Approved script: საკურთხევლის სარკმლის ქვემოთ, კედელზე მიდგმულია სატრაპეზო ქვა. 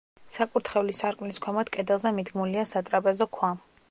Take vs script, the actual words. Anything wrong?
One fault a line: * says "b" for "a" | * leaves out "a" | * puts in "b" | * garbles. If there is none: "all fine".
all fine